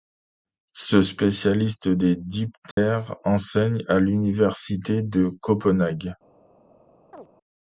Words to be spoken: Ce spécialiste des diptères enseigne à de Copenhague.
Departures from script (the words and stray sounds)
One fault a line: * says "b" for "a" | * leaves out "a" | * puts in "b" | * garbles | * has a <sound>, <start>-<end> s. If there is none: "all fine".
* has a dropout, 2.7-2.8 s
* puts in "l'université"
* has a chirp, 7.1-7.3 s